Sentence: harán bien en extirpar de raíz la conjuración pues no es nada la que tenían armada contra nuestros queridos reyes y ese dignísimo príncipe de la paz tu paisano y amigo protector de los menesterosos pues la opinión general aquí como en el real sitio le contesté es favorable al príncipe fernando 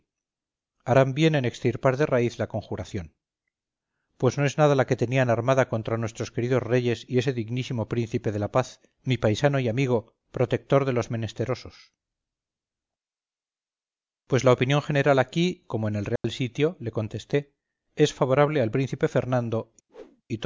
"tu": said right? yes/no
no